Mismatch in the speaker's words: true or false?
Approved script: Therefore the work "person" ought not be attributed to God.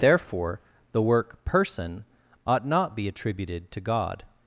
false